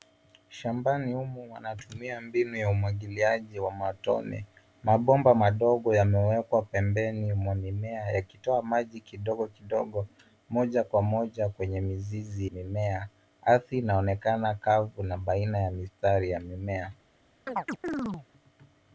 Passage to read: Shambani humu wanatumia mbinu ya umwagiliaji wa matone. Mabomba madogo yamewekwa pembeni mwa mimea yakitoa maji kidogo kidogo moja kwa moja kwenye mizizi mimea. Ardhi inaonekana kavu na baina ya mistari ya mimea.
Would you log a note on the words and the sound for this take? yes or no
yes